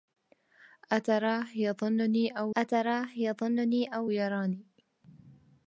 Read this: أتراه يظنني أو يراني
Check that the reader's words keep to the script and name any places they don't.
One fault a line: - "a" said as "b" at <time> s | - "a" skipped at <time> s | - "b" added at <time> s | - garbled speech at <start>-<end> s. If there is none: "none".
- "أتراه يظنني أو" added at 2.6 s